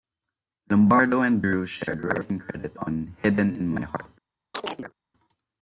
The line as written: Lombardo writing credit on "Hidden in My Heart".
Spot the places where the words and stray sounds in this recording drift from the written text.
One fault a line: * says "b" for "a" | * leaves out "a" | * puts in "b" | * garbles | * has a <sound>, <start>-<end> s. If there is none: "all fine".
* puts in "and Drew shared"
* has a chirp, 4.5-4.9 s